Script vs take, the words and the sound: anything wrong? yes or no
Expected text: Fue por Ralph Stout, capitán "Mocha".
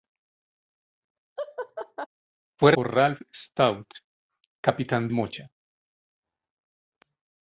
yes